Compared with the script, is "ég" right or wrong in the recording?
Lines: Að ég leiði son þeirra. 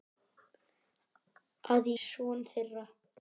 wrong